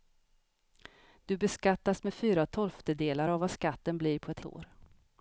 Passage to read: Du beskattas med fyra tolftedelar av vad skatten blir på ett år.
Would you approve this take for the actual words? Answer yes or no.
yes